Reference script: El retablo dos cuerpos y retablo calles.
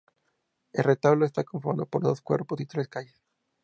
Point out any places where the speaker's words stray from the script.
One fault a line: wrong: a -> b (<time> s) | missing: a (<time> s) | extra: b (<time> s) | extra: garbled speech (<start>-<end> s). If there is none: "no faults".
extra: está conformado por (1.3 s)
wrong: retablo -> tres (2.7 s)